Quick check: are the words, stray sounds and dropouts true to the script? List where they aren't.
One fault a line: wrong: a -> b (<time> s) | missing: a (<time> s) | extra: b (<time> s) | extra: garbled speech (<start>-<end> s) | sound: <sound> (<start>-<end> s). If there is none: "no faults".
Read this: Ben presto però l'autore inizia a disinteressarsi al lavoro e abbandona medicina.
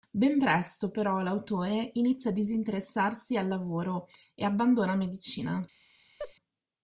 sound: laugh (6.2-6.3 s)